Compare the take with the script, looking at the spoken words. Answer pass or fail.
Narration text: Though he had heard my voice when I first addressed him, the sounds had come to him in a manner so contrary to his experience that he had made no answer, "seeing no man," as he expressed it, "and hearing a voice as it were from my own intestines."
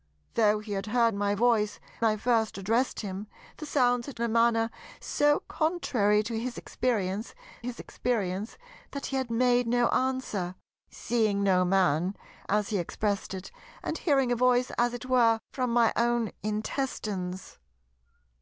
fail